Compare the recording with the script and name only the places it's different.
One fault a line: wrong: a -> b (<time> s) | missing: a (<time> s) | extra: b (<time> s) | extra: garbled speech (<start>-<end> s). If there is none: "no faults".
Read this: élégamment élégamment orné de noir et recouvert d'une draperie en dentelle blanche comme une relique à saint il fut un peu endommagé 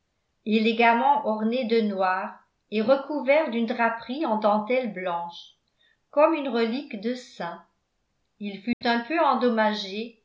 missing: élégamment (1.2 s)
wrong: à -> de (7.0 s)